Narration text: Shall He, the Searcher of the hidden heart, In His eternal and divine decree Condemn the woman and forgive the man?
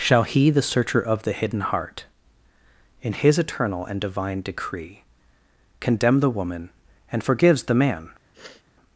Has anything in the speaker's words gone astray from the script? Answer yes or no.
yes